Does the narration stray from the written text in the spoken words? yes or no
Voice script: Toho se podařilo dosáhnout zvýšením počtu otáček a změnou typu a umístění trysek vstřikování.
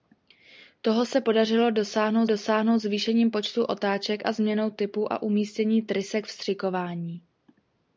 yes